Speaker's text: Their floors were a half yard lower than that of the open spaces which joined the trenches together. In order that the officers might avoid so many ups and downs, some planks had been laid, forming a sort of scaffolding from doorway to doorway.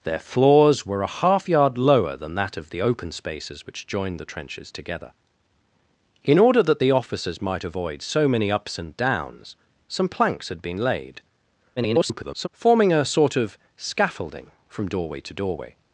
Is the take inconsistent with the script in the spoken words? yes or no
yes